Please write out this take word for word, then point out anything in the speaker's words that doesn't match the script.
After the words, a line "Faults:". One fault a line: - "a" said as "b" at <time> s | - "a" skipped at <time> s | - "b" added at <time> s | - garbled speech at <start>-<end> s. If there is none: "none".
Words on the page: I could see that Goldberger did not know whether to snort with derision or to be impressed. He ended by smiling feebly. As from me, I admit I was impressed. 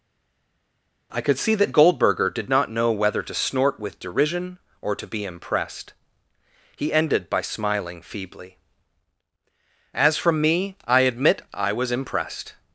I could see that Goldberger did not know whether to snort with derision or to be impressed. He ended by smiling feebly. As from me, I admit I was impressed.
Faults:
none